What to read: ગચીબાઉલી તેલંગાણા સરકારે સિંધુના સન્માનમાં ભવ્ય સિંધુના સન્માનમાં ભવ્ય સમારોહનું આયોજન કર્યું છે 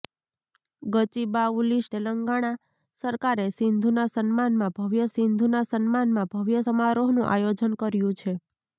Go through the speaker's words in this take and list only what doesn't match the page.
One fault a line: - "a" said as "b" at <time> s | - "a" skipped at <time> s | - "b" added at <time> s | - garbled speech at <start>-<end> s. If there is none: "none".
none